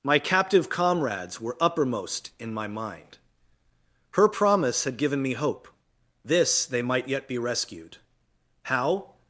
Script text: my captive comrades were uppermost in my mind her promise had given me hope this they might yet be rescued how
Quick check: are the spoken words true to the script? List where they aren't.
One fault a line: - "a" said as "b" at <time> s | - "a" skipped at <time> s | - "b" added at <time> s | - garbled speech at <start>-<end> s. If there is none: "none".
none